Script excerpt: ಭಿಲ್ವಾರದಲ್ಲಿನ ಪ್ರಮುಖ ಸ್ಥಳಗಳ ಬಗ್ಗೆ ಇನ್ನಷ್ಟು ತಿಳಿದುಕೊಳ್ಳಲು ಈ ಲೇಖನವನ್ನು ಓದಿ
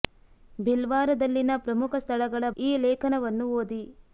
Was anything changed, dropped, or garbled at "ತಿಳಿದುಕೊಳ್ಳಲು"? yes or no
yes